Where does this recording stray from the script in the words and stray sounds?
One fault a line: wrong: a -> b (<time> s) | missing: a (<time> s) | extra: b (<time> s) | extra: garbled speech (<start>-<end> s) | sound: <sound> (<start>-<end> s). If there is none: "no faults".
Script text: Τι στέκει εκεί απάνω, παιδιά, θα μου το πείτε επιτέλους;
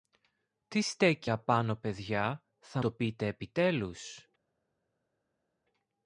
missing: εκεί (1.3 s)
missing: μου (2.8 s)